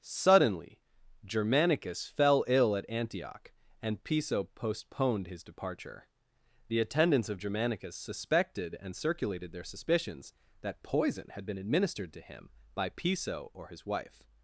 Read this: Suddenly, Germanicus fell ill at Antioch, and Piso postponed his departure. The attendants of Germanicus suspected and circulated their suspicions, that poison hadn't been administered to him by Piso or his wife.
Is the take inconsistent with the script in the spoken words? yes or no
yes